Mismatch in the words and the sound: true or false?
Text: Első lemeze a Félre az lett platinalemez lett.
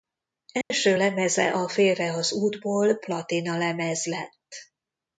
true